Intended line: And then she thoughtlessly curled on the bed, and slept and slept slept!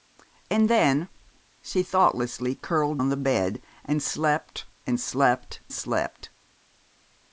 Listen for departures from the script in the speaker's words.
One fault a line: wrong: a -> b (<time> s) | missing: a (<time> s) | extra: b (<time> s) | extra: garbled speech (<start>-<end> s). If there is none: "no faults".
no faults